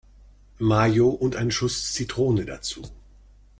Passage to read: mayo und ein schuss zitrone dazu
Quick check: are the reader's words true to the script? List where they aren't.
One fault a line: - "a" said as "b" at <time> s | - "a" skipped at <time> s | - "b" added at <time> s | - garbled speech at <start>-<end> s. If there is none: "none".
none